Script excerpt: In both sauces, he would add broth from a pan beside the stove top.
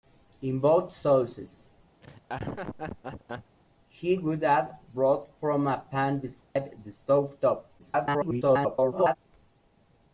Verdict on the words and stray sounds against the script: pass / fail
fail